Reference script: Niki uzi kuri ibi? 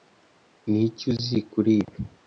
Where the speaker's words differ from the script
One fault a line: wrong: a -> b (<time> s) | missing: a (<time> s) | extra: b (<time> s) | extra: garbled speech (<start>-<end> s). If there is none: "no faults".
no faults